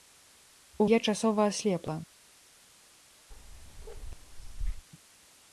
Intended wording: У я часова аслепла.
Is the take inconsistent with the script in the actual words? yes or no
no